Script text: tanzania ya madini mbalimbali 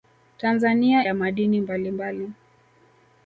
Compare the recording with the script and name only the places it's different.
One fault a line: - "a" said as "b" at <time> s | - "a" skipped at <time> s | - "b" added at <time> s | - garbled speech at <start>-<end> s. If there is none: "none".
none